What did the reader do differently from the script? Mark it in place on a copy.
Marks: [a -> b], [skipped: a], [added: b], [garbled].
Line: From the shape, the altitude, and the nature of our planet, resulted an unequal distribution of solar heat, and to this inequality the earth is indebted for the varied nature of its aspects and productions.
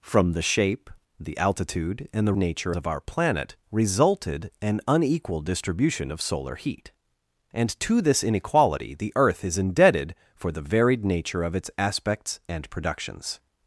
From the shape, the altitude, and the nature of our planet, resulted an unequal distribution of solar heat, and to this inequality the earth is indebted for the varied nature of its aspects and productions.